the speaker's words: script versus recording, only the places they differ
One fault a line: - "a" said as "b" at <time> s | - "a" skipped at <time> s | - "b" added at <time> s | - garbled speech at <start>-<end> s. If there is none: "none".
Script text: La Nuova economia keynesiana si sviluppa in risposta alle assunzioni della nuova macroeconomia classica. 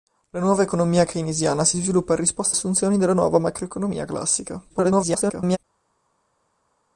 - "alle" skipped at 2.6 s
- garbled speech at 4.7-5.6 s